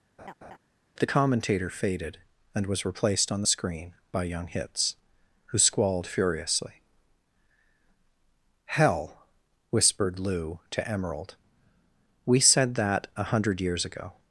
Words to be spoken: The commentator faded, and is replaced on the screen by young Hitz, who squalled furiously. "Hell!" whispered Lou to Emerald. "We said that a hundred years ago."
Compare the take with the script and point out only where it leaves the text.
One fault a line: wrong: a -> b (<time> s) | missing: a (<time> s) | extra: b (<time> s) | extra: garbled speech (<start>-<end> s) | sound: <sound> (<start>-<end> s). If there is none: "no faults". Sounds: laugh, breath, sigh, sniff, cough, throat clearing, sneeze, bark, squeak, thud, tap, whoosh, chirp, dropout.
sound: laugh (0.2-0.6 s)
wrong: is -> was (2.7 s)